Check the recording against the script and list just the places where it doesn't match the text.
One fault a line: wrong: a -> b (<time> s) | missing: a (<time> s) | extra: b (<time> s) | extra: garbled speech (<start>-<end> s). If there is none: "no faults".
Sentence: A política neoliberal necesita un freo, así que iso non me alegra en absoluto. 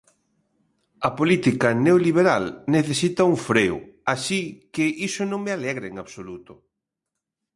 no faults